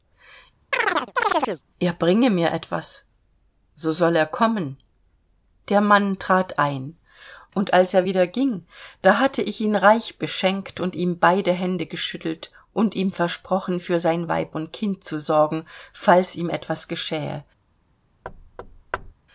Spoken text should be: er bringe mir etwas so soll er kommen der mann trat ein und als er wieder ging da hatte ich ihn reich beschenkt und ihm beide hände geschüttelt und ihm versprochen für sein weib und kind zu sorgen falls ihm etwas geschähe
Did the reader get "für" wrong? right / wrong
right